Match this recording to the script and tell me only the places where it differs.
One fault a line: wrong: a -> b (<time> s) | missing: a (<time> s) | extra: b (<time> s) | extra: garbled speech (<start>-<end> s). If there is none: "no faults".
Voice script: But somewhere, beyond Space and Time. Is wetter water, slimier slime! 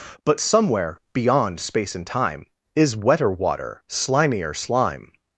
no faults